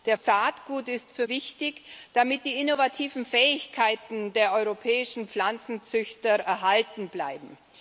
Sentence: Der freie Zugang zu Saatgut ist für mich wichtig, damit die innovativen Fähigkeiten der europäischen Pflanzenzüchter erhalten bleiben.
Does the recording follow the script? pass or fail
fail